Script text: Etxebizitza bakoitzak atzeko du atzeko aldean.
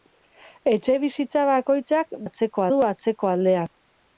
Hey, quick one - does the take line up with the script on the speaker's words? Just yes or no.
yes